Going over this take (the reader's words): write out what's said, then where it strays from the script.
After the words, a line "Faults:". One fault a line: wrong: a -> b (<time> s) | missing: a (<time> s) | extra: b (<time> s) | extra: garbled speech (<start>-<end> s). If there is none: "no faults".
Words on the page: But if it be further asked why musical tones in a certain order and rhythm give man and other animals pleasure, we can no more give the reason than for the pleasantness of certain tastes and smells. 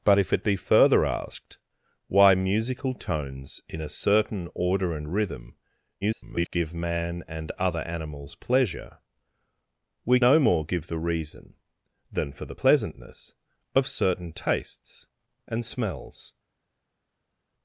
But if it be further asked why musical tones in a certain order and rhythm [garbled] give man and other animals pleasure, we no more give the reason than for the pleasantness of certain tastes and smells.
Faults:
extra: garbled speech (6.0-6.5 s)
missing: can (10.2 s)